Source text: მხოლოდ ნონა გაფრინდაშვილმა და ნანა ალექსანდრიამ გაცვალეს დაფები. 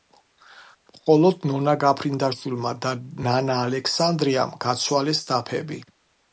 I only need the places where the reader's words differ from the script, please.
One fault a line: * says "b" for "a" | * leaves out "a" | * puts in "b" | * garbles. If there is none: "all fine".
all fine